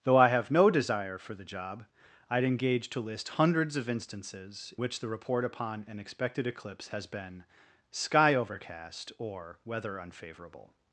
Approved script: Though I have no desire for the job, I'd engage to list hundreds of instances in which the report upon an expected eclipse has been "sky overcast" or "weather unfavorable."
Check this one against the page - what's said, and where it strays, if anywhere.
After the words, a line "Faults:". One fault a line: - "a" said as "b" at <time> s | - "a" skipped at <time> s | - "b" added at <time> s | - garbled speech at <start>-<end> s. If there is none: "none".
Though I have no desire for the job, I'd engage to list hundreds of instances which the report upon an expected eclipse has been "sky overcast" or "weather unfavorable."
Faults:
- "in" skipped at 4.7 s